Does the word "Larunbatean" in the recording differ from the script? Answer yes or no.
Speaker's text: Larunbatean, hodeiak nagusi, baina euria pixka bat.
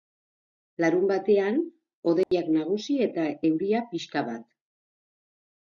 no